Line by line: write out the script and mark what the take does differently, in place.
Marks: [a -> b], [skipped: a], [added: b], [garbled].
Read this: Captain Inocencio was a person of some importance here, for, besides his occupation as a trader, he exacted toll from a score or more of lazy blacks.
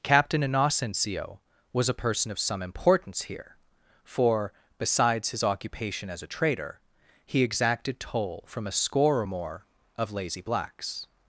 Captain Inocencio was a person of some importance here, for, besides his occupation as a trader, he exacted toll from a score or more of lazy blacks.